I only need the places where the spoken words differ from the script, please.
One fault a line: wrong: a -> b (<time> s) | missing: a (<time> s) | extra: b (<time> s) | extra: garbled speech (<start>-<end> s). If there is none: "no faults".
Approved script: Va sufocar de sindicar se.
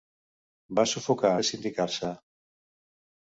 no faults